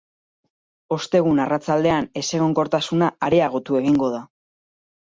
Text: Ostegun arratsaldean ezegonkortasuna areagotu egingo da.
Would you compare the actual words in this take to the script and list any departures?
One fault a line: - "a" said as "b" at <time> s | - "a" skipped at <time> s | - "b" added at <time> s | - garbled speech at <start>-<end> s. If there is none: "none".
none